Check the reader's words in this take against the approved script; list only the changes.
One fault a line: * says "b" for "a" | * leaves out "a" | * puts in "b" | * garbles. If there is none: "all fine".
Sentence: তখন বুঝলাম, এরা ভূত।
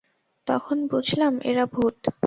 all fine